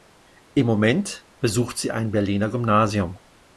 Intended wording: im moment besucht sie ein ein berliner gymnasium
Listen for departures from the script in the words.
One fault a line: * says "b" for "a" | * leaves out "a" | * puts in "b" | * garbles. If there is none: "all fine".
* leaves out "ein"